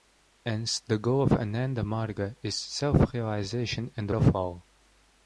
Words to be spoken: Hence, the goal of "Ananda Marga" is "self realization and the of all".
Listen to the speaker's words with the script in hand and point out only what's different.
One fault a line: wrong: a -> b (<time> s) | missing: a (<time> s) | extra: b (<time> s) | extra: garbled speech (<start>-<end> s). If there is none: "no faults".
no faults